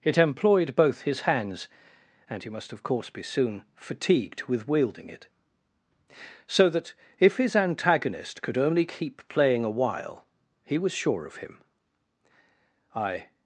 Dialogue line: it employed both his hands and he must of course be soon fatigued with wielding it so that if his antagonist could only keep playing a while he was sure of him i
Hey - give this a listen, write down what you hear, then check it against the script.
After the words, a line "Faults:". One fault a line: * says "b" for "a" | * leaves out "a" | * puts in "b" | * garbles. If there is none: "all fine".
it employed both his hands and he must of course be soon fatigued with wielding it so that if his antagonist could only keep playing a while he was sure of him i
Faults:
all fine